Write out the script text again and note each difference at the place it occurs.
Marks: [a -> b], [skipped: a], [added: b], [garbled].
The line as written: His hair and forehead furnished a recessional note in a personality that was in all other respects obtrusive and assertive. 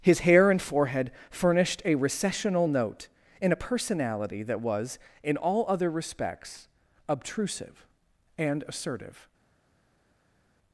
His hair and forehead furnished a recessional note in a personality that was in all other respects obtrusive and assertive.